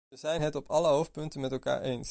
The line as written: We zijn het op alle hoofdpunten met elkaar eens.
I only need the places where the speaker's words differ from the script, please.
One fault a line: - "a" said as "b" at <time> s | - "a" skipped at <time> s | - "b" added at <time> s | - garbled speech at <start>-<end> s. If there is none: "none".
none